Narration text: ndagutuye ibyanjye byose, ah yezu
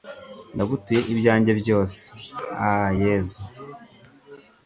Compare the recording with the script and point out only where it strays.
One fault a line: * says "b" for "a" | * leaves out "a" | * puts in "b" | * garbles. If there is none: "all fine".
all fine